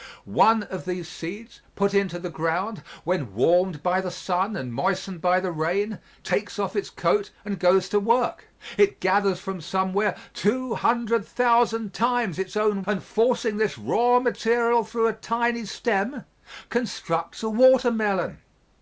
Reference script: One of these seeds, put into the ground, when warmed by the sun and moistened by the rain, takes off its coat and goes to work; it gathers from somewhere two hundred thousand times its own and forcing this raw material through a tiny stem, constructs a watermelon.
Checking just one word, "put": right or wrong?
right